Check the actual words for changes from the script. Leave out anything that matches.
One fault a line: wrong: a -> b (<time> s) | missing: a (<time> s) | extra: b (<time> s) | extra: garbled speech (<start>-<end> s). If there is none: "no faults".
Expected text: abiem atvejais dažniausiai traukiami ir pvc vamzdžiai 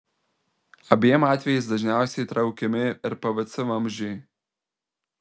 no faults